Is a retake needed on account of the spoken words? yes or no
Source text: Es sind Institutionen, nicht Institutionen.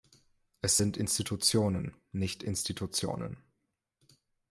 no